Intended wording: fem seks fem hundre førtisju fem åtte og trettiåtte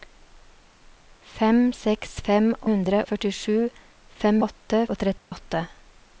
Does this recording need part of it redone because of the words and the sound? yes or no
yes